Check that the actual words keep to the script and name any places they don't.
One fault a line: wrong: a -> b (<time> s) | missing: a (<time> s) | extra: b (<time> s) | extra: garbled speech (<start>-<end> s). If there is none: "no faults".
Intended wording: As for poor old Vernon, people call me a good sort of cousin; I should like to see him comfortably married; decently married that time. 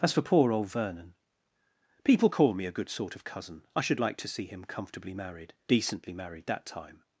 no faults